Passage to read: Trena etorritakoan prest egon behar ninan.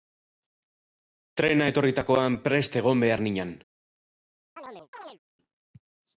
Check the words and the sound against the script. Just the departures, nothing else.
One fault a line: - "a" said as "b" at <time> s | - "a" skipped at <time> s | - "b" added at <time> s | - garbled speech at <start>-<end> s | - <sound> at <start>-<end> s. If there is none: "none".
- chirp at 4.6-5.2 s